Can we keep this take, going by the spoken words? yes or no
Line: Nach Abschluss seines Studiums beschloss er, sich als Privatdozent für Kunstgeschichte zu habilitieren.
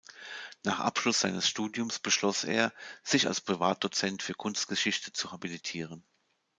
yes